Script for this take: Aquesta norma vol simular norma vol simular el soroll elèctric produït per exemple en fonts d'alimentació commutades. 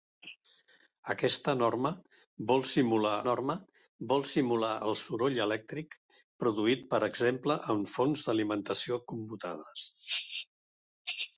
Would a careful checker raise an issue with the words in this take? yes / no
no